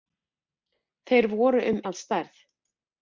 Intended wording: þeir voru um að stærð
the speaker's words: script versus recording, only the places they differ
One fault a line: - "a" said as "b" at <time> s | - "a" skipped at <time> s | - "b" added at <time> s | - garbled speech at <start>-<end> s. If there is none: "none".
none